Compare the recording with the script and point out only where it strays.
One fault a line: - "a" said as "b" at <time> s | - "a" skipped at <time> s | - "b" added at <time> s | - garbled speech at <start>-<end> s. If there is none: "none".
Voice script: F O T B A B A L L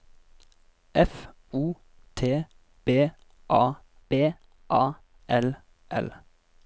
none